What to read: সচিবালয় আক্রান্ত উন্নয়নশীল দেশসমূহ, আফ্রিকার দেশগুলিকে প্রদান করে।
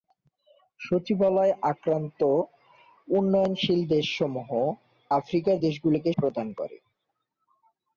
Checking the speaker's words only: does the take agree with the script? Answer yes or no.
yes